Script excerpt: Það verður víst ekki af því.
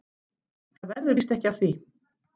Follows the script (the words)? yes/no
yes